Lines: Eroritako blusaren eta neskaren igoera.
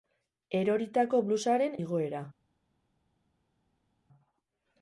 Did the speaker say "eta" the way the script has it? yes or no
no